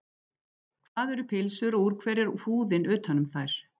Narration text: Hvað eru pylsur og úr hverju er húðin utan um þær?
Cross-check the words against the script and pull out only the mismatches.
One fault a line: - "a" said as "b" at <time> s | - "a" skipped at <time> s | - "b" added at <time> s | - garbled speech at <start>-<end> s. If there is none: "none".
none